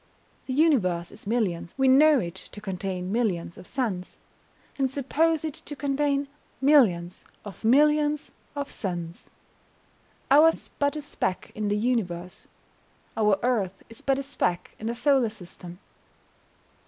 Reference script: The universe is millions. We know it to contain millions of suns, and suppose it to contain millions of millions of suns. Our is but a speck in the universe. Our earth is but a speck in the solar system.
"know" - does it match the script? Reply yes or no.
yes